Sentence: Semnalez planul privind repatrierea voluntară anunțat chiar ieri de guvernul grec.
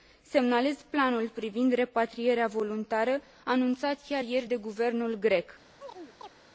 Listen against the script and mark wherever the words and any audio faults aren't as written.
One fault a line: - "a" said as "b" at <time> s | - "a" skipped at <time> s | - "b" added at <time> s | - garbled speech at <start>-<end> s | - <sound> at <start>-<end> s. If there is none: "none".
- chirp at 5.8-6.3 s